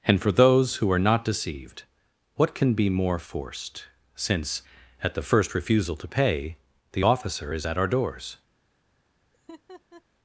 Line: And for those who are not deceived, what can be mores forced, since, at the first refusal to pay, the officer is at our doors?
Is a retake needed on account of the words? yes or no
yes